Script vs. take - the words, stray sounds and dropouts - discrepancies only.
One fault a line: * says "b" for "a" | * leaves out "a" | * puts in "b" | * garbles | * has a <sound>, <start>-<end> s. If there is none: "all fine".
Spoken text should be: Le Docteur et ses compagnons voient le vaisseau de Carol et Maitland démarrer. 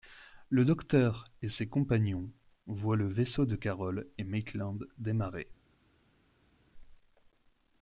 all fine